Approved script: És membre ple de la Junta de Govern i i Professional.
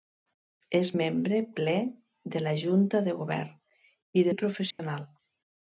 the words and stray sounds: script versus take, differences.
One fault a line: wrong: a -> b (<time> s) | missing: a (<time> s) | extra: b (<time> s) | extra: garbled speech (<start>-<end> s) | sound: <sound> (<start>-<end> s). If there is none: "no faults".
sound: dropout (4.7-4.8 s)